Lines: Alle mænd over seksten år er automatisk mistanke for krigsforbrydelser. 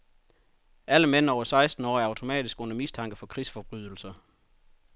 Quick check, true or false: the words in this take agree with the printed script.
false